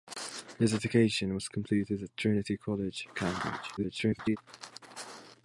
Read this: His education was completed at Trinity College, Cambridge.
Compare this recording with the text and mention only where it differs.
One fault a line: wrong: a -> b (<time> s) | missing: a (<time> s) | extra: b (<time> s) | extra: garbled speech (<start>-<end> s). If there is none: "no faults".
extra: garbled speech (3.8-4.4 s)